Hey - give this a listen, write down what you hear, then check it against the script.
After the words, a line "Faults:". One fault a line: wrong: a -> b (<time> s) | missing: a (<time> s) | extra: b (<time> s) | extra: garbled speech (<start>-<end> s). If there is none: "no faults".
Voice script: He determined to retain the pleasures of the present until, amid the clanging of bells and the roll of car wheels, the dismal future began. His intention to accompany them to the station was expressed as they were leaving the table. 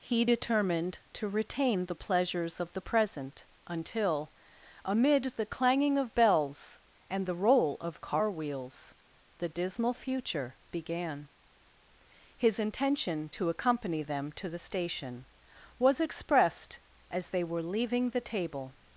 He determined to retain the pleasures of the present until, amid the clanging of bells and the roll of car wheels, the dismal future began. His intention to accompany them to the station was expressed as they were leaving the table.
Faults:
no faults